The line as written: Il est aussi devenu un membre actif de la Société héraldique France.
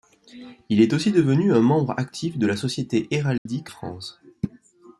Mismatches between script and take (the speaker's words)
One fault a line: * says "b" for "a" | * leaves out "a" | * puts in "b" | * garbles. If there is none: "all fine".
all fine